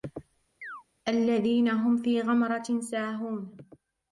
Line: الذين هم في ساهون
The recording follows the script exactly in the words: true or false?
false